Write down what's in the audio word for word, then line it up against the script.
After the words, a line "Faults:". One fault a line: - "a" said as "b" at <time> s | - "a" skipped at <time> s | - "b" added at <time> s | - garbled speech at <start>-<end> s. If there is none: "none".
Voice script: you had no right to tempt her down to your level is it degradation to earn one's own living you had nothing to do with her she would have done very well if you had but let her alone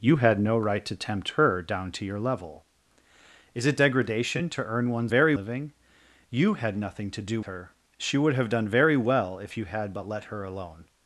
you had no right to tempt her down to your level is it degradation to earn one's very living you had nothing to do her she would have done very well if you had but let her alone
Faults:
- "own" said as "very" at 5.1 s
- "with" skipped at 7.4 s